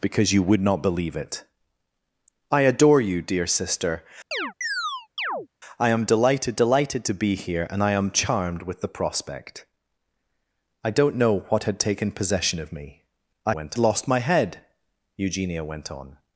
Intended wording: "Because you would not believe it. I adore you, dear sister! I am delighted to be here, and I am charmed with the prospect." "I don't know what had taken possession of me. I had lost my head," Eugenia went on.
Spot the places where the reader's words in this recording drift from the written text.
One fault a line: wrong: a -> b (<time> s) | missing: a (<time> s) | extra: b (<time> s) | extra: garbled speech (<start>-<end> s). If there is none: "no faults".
extra: delighted (6.5 s)
wrong: had -> went (13.5 s)